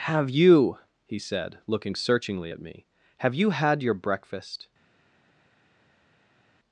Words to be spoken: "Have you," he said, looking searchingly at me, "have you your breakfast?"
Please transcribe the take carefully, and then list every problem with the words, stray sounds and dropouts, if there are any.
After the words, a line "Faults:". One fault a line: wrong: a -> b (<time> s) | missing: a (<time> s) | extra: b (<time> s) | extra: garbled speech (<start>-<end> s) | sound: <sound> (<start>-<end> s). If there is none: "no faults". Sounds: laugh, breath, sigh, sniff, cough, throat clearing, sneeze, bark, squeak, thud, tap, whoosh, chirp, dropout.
"Have you," he said, looking searchingly at me, "have you had your breakfast?"
Faults:
extra: had (3.5 s)